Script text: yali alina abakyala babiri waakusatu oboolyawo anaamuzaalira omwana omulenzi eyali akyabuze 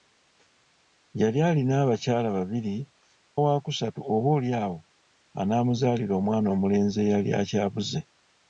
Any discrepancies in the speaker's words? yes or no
no